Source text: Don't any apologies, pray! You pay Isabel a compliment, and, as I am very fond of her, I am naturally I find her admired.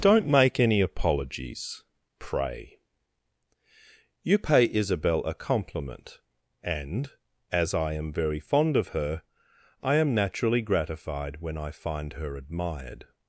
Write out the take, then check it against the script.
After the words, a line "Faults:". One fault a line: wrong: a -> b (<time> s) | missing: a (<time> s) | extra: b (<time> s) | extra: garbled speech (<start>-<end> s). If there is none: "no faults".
Don't make any apologies, pray! You pay Isabel a compliment, and, as I am very fond of her, I am naturally gratified when I find her admired.
Faults:
extra: make (0.2 s)
extra: gratified when (10.6 s)